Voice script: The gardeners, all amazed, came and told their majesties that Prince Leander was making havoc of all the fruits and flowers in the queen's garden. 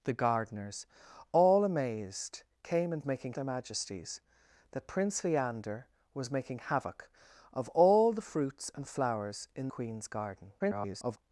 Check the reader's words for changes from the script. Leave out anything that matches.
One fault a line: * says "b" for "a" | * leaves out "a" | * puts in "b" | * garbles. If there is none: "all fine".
* says "making" for "told"
* leaves out "the"
* garbles